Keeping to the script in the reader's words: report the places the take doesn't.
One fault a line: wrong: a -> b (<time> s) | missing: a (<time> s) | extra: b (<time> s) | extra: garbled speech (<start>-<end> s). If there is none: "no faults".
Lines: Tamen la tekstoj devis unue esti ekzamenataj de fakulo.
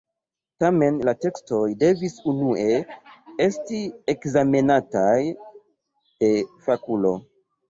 no faults